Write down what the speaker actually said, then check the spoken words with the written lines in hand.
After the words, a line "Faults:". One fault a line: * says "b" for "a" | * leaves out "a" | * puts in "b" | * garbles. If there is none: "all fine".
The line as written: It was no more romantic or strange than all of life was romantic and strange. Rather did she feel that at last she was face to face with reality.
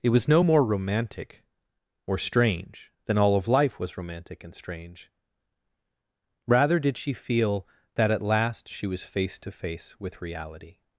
It was no more romantic or strange than all of life was romantic and strange. Rather did she feel that at last she was face to face with reality.
Faults:
all fine